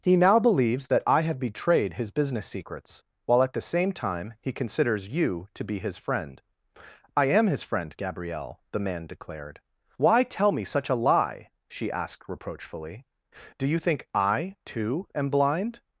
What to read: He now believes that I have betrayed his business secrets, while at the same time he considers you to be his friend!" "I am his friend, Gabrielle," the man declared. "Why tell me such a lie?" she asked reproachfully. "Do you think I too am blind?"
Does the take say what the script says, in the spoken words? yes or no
yes